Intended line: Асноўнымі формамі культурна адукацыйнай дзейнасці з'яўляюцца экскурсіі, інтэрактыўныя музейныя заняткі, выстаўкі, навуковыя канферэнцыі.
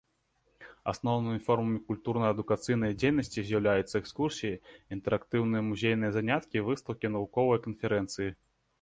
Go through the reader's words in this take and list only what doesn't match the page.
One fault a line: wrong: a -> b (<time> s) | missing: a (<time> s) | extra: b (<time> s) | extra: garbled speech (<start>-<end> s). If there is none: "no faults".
no faults